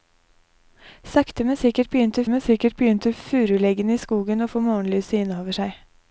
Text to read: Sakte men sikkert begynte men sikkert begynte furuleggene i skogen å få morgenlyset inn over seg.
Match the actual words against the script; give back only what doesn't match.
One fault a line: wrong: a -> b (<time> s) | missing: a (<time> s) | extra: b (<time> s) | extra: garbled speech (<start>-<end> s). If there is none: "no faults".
no faults